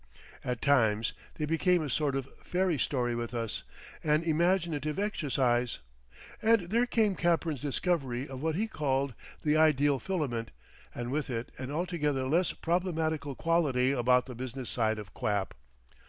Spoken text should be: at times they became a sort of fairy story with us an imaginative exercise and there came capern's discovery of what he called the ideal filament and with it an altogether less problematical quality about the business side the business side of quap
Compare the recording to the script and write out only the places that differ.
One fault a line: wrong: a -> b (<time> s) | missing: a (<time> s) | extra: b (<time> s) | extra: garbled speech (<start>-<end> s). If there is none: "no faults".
missing: the business side (15.0 s)